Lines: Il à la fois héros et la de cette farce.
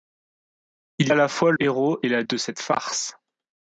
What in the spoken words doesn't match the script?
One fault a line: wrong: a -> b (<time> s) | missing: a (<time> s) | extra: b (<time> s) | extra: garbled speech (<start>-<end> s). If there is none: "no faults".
no faults